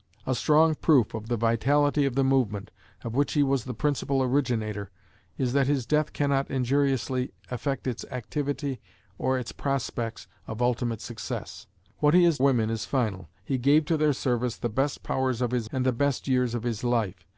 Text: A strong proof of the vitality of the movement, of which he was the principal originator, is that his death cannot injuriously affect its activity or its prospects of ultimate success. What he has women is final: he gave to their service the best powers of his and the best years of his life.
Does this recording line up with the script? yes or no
yes